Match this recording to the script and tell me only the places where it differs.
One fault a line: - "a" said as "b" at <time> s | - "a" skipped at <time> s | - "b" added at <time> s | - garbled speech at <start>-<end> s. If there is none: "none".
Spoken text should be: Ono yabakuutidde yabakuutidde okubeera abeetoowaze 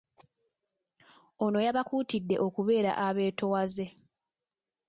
- "yabakuutidde" skipped at 2.4 s